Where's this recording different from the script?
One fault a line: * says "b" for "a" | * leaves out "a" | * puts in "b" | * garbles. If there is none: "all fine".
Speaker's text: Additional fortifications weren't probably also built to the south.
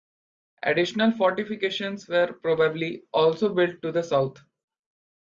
* says "were" for "weren't"